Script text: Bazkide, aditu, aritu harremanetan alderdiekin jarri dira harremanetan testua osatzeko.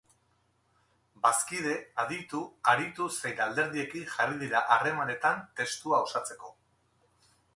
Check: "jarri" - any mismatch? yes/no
no